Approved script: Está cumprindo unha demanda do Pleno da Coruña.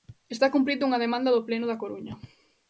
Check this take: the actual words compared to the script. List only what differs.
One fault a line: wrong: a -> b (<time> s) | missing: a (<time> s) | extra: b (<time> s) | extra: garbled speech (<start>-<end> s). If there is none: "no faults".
no faults